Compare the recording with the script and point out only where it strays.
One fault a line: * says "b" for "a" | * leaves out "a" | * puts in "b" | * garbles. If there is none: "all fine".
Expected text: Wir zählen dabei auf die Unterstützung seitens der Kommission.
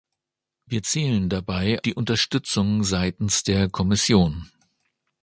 * leaves out "auf"